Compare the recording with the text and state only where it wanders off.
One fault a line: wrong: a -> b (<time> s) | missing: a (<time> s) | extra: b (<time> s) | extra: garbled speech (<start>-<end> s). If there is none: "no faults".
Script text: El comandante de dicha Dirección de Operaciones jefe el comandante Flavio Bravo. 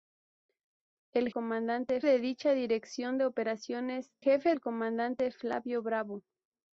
no faults